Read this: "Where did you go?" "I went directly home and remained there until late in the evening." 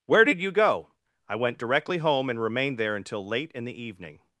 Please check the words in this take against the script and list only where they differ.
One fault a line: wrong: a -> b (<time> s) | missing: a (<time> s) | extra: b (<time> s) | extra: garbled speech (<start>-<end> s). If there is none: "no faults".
no faults